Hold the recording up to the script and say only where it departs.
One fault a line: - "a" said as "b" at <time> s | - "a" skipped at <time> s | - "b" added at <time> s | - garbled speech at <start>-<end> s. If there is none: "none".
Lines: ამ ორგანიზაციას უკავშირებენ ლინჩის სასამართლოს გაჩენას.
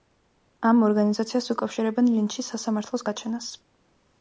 none